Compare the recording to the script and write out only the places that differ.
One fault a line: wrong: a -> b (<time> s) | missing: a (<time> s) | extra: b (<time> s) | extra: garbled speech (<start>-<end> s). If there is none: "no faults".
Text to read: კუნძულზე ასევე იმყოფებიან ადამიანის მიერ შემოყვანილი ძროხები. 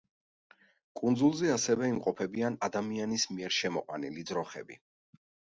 no faults